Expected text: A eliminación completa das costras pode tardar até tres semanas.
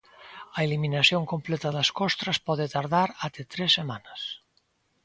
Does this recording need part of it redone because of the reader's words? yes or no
no